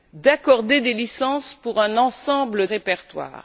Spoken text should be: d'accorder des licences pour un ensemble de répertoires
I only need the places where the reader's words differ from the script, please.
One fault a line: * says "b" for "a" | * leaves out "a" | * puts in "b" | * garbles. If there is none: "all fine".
* leaves out "de"